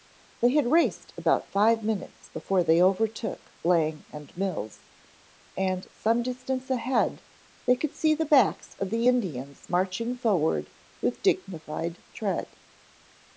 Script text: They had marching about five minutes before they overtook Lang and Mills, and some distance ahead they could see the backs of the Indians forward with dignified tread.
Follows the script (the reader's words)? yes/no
no